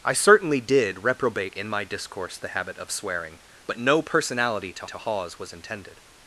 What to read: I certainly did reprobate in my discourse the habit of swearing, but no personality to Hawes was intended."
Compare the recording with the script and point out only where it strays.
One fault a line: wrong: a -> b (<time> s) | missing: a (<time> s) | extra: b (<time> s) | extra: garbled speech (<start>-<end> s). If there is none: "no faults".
extra: to (4.8 s)